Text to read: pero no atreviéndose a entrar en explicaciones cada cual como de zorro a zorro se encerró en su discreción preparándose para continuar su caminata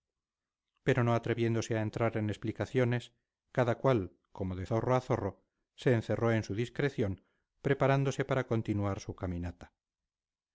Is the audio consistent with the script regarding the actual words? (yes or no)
yes